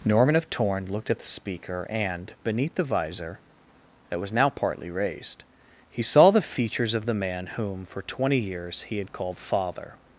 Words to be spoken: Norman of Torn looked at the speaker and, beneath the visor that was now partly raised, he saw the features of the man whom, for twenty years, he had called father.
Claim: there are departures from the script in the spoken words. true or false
false